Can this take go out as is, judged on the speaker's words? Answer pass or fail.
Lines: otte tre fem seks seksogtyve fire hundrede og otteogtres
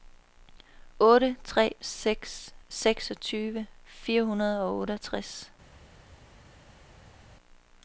fail